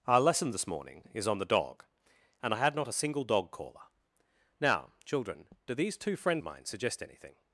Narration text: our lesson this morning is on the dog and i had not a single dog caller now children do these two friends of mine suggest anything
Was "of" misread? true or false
true